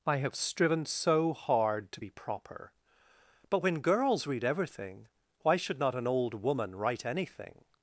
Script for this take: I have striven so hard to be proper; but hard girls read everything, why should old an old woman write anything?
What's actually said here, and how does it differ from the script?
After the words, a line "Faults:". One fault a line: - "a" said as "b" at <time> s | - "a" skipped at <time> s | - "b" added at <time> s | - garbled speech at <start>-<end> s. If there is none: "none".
I have striven so hard to be proper; but when girls read everything, why should not an old woman write anything?
Faults:
- "hard" said as "when" at 3.6 s
- "old" said as "not" at 5.8 s